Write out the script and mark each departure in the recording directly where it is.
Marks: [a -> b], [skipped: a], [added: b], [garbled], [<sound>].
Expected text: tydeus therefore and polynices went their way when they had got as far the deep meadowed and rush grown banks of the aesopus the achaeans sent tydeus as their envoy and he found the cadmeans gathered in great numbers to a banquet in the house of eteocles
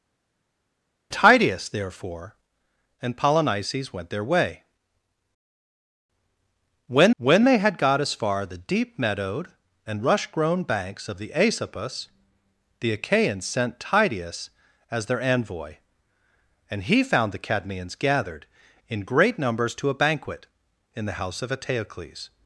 tydeus therefore and polynices went their way when [added: when] they had got as far the deep meadowed and rush grown banks of the aesopus the achaeans sent tydeus as their envoy and he found the cadmeans gathered in great numbers to a banquet in the house of eteocles